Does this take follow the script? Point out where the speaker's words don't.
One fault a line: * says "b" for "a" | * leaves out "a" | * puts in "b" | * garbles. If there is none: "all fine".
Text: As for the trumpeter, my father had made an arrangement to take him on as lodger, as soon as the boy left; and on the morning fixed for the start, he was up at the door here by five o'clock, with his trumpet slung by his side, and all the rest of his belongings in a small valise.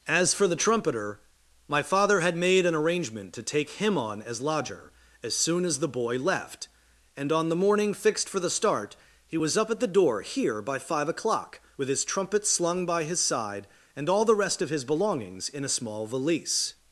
all fine